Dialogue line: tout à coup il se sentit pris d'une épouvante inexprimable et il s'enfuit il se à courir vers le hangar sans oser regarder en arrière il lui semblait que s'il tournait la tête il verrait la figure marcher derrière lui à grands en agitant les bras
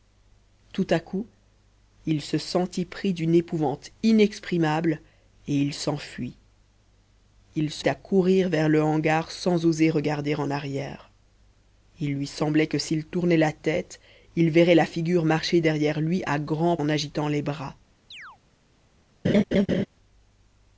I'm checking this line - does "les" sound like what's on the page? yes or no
yes